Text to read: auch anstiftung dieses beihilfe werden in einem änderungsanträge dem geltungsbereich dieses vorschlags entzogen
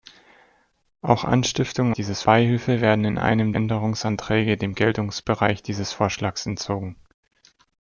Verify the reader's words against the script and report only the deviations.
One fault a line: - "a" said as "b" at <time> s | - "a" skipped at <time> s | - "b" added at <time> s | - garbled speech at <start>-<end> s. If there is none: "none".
none